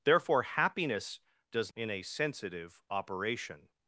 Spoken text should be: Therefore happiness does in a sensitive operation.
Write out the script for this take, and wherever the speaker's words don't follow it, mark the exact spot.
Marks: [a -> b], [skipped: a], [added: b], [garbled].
Therefore happiness does in a sensitive operation.